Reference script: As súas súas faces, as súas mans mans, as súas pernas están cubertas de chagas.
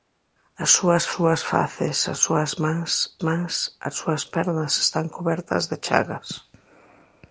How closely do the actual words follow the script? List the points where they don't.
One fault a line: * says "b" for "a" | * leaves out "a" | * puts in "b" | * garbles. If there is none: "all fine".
all fine